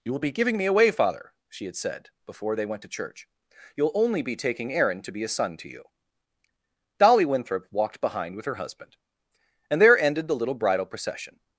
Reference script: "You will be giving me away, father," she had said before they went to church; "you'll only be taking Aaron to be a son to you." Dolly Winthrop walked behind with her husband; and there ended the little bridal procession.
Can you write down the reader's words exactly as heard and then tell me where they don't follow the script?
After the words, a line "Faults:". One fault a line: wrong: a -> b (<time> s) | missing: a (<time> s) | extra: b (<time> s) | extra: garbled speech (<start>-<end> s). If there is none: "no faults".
"You will be giving me away, father," she had said before they went to church; "you'll only be taking Aaron to be a son to you." Dolly Winthrop walked behind with her husband; and there ended the little bridal procession.
Faults:
no faults